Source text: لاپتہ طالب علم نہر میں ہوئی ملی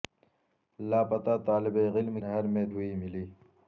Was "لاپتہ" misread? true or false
false